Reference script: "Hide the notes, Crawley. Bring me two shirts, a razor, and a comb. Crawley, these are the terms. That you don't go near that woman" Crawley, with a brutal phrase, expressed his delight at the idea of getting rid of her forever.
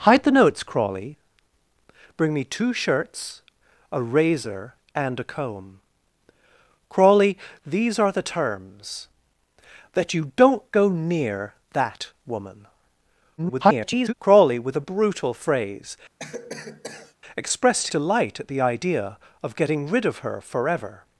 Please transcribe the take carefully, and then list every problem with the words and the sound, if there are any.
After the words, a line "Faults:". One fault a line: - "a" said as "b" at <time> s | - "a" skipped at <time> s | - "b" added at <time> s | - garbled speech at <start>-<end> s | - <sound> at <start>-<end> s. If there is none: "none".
"Hide the notes, Crawley. Bring me two shirts, a razor, and a comb. Crawley, these are the terms. That you don't go near that woman" [garbled] Crawley, with a brutal phrase, expressed delight at the idea of getting rid of her forever.
Faults:
- garbled speech at 13.4-14.1 s
- cough at 16.2-17.1 s
- "his" skipped at 17.9 s